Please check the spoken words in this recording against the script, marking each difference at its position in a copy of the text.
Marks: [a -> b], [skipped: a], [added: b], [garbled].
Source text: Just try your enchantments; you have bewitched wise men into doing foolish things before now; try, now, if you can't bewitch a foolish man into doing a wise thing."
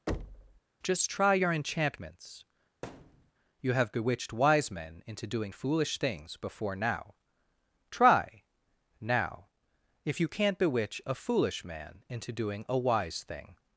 Just try your enchantments; you have bewitched wise men into doing foolish things before now; try, now, if you can't bewitch a foolish man into doing a wise thing."